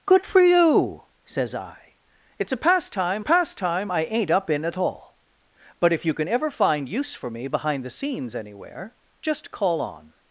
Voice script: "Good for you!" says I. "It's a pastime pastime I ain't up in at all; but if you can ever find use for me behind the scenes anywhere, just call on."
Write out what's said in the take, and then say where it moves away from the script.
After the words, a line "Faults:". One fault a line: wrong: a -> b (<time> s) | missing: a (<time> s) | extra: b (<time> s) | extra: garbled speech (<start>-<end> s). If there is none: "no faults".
"Good for you!" says I. "It's a pastime pastime I ain't up in at all; but if you can ever find use for me behind the scenes anywhere, just call on."
Faults:
no faults